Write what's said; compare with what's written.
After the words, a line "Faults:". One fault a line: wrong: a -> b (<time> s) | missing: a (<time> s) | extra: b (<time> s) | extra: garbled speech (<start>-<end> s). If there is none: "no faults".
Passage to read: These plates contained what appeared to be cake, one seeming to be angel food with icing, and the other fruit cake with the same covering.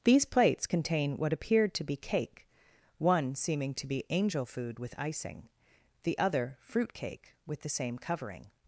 These plates contain what appeared to be cake, one seeming to be angel food with icing, the other fruit cake with the same covering.
Faults:
wrong: contained -> contain (0.6 s)
missing: and (5.5 s)